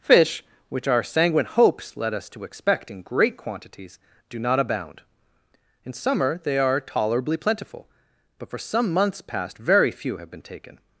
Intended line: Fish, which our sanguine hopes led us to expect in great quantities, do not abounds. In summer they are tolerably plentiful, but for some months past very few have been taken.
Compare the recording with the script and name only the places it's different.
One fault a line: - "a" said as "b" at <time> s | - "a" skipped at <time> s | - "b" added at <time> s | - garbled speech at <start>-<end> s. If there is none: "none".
- "abounds" said as "abound" at 4.6 s